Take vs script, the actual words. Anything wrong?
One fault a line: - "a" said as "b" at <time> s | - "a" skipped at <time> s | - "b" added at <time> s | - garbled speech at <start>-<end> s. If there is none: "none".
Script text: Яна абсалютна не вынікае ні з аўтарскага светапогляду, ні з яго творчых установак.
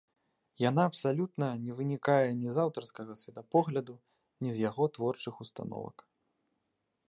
none